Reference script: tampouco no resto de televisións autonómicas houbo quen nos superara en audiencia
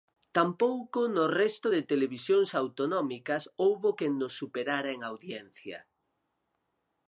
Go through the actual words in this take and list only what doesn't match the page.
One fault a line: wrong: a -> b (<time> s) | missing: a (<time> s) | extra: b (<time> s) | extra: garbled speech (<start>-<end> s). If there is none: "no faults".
no faults